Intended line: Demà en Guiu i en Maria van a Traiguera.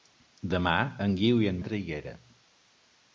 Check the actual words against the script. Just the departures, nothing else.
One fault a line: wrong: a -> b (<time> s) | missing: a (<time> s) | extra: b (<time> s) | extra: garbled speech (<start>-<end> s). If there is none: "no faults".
missing: Maria van (1.6 s)